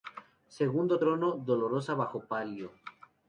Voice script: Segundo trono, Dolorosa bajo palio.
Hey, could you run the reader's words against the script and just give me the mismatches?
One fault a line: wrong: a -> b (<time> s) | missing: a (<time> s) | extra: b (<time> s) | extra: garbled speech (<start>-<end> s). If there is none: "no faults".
no faults